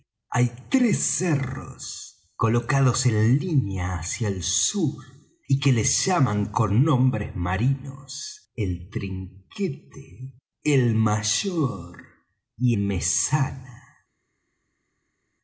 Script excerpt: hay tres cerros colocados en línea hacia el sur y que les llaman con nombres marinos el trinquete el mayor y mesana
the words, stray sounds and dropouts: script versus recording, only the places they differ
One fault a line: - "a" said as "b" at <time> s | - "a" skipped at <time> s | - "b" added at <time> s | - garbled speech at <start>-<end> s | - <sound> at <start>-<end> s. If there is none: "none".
none